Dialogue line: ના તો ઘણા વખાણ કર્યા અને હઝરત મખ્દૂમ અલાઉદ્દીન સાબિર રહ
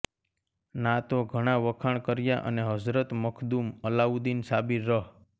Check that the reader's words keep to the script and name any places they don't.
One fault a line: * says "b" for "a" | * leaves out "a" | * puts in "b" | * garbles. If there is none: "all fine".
all fine